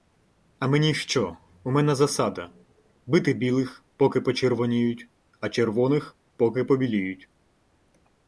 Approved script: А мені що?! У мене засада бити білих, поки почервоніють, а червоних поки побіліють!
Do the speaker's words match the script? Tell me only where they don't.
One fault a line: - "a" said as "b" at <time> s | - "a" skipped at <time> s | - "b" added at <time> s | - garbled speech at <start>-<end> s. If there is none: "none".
none